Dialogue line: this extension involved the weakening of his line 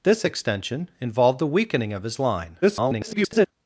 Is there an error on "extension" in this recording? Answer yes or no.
no